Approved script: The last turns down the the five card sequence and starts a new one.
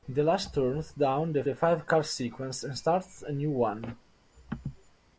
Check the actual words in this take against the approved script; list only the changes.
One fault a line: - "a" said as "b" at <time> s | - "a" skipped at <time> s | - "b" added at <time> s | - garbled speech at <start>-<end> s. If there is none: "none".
none